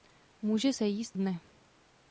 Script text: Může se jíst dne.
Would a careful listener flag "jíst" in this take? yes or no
no